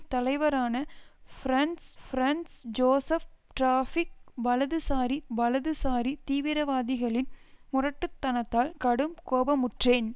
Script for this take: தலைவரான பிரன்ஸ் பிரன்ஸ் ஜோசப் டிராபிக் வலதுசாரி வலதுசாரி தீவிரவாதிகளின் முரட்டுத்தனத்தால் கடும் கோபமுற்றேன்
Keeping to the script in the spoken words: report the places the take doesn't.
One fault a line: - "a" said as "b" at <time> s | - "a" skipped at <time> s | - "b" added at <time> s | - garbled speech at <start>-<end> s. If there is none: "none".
none